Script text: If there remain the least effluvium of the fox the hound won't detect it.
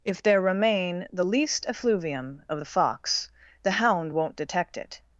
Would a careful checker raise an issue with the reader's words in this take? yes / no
no